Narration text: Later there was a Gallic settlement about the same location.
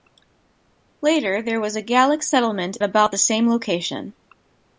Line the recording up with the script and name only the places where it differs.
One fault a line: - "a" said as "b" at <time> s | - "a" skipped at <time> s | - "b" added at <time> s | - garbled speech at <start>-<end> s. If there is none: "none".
none